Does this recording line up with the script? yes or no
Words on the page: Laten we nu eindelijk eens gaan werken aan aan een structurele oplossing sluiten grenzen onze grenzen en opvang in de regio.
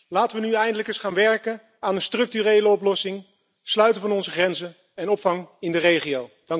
no